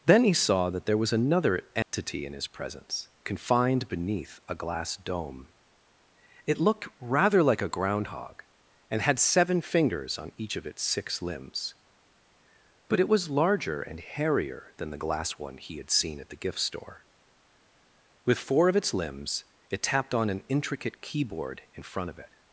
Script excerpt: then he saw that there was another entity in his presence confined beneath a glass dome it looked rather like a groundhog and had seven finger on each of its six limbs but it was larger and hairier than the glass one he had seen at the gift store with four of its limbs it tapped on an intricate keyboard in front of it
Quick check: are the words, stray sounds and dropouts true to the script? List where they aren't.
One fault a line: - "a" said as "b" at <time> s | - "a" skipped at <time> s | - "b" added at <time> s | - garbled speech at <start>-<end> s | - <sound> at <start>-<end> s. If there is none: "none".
- dropout at 1.8-1.9 s
- "finger" said as "fingers" at 9.6 s